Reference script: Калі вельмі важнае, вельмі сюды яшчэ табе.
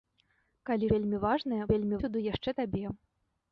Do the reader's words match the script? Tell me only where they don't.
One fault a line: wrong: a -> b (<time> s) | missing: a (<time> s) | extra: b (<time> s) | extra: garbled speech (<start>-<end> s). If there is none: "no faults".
no faults